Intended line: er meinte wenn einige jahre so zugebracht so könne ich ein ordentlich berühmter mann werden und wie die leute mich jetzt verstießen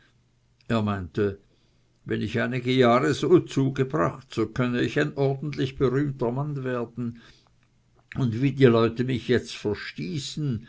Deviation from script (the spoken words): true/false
true